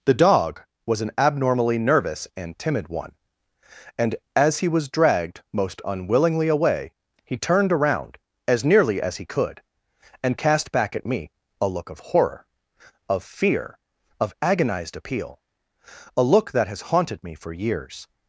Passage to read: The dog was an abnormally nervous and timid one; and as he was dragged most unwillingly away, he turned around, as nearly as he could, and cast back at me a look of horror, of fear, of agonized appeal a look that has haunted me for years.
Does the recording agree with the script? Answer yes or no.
yes